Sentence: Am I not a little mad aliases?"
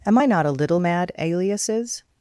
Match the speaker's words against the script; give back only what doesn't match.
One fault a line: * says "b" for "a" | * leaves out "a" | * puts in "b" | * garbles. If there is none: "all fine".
all fine